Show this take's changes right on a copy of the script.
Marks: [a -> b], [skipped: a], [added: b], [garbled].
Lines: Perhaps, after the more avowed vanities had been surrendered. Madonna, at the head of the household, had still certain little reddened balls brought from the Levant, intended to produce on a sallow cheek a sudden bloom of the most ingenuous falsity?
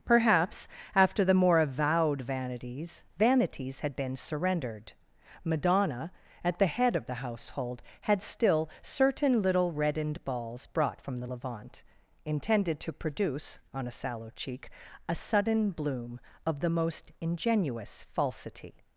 Perhaps, after the more avowed vanities [added: vanities] had been surrendered. Madonna, at the head of the household, had still certain little reddened balls brought from the Levant, intended to produce on a sallow cheek a sudden bloom of the most ingenuous falsity?